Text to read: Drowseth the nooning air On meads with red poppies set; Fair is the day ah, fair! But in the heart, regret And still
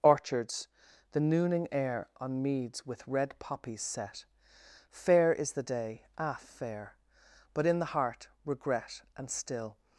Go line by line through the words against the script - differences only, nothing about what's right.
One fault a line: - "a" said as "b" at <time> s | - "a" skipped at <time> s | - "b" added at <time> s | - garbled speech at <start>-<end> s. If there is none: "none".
- "Drowseth" said as "Orchards" at 0.0 s